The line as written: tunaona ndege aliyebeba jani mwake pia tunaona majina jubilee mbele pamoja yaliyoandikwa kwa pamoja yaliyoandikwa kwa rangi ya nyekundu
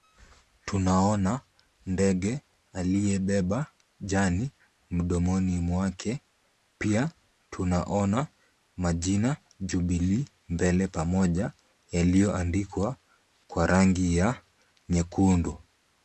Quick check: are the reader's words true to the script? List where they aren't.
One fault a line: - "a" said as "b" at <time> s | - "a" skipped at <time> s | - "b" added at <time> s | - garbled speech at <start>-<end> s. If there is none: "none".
- "mdomoni" added at 4.9 s
- "pamoja yaliyoandikwa kwa" skipped at 13.7 s